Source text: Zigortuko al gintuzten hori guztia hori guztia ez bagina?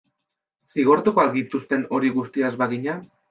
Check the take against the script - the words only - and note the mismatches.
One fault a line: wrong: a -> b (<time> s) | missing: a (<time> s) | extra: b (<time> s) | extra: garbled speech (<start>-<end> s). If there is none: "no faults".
missing: hori guztia (2.5 s)